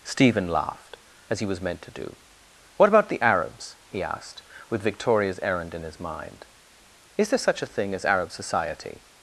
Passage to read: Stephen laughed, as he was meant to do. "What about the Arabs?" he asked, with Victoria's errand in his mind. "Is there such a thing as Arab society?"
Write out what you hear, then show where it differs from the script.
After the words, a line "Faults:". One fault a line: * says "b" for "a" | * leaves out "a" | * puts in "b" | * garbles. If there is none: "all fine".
Stephen laughed, as he was meant to do. "What about the Arabs?" he asked, with Victoria's errand in his mind. "Is there such a thing as Arab society?"
Faults:
all fine